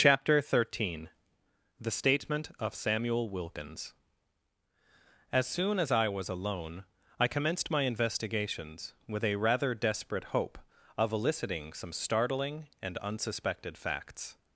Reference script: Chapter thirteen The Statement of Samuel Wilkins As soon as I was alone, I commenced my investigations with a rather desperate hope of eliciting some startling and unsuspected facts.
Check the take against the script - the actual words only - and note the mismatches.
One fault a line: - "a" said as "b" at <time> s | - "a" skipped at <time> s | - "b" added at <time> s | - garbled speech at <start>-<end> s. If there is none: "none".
none